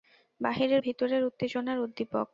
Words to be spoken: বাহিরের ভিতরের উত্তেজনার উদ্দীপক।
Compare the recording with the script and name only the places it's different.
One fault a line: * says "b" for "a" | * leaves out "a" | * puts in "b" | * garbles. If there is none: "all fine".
all fine